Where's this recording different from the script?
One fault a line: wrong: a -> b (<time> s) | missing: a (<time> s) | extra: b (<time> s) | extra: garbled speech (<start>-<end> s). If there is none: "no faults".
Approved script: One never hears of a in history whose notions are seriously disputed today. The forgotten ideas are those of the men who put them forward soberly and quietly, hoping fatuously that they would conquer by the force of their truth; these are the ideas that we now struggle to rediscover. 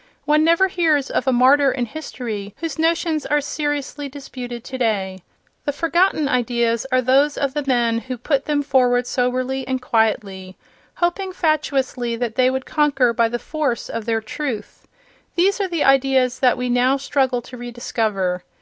extra: martyr (1.3 s)